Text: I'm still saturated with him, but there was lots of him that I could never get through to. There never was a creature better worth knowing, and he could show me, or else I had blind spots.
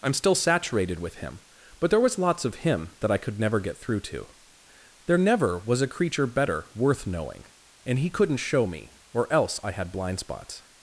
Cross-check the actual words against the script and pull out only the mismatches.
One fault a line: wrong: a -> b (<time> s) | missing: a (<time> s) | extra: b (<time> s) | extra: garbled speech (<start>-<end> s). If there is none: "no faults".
wrong: could -> couldn't (8.1 s)